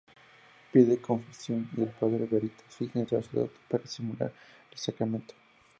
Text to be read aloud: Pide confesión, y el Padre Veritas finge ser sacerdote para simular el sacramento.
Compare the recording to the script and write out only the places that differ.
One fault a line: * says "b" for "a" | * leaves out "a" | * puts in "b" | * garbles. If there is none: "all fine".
* leaves out "ser"